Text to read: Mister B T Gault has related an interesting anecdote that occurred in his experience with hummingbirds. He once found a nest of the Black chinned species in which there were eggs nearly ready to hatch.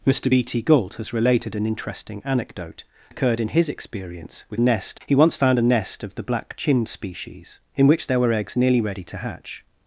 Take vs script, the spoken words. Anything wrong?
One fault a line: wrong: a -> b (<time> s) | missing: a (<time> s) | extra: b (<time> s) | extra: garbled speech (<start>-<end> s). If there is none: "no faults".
missing: that (2.8 s)
wrong: hummingbirds -> nest (4.6 s)